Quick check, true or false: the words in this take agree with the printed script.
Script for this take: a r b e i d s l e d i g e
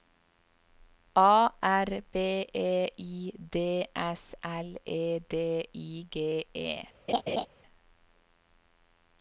true